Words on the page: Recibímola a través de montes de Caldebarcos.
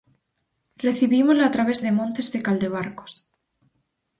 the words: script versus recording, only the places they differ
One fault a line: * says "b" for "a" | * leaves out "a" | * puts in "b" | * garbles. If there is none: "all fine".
all fine